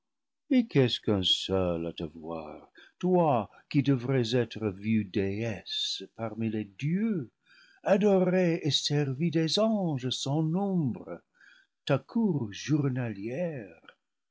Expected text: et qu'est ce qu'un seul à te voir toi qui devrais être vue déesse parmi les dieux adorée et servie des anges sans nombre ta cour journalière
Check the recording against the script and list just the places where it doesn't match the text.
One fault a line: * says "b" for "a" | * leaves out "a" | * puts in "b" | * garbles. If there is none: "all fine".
all fine